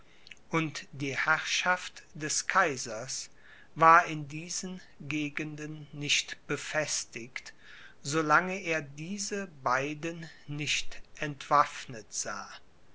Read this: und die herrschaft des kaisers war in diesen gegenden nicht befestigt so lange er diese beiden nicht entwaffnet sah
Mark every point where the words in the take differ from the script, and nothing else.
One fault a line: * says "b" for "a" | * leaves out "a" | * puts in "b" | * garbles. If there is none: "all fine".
all fine